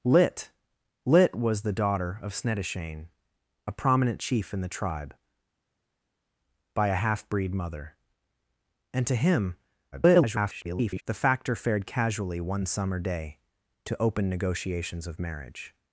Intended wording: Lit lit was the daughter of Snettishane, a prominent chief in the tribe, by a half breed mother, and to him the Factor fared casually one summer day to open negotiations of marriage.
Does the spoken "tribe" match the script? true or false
true